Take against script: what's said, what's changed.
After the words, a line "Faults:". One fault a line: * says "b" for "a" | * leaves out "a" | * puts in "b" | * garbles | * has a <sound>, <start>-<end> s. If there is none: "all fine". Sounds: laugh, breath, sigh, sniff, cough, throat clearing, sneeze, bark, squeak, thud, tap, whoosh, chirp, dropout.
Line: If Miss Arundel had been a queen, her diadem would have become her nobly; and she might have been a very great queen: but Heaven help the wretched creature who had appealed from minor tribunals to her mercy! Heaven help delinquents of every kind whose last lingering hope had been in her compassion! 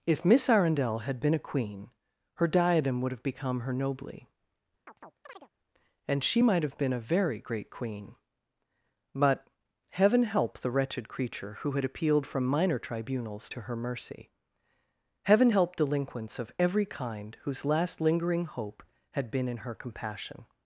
If Miss Arundel had been a queen, her diadem would have become her nobly; and she might have been a very great queen: but Heaven help the wretched creature who had appealed from minor tribunals to her mercy! Heaven help delinquents of every kind whose last lingering hope had been in her compassion!
Faults:
* has a chirp, 4.9-5.5 s